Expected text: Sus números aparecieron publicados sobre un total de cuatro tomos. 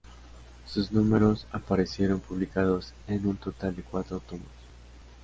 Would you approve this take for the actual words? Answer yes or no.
no